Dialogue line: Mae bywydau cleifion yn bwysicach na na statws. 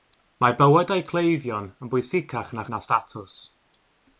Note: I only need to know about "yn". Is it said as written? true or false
true